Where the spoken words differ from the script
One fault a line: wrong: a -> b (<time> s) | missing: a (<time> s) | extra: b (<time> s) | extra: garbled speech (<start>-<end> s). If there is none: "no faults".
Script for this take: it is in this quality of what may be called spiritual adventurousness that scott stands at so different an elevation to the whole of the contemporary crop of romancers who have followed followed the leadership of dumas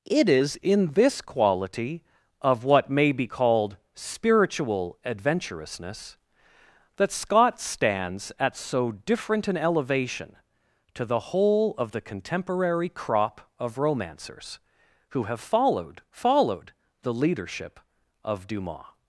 no faults